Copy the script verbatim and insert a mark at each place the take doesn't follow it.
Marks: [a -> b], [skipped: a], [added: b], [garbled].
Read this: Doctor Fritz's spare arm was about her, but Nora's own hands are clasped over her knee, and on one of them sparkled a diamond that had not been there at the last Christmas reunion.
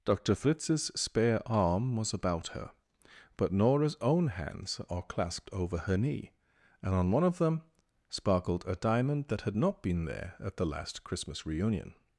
Doctor Fritz's spare arm was about her, but Nora's own hands are clasped over her knee, and on one of them sparkled a diamond that had not been there at the last Christmas reunion.